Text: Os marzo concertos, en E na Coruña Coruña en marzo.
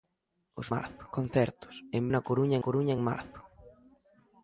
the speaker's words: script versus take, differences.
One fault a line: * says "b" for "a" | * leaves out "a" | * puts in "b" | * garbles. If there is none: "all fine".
all fine